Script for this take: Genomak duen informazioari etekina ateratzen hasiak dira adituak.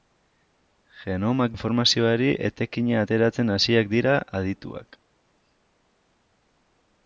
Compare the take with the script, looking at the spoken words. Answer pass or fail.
fail